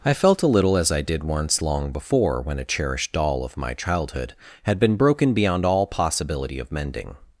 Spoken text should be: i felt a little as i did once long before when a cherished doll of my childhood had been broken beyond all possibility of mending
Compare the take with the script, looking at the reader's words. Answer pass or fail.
pass